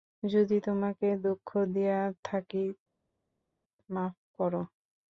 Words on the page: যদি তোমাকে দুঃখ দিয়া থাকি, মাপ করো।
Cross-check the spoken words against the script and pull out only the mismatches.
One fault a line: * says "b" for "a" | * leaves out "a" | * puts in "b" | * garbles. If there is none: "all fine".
all fine